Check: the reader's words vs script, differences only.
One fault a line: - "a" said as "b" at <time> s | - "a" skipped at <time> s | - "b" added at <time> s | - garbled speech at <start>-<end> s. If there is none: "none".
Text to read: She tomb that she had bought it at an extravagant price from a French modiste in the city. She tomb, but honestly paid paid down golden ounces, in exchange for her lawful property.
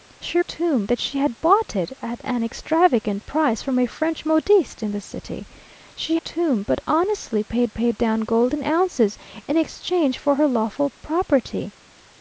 none